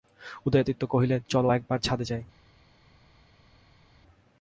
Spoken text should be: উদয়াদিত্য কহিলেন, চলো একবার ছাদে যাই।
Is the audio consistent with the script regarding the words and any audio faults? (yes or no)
yes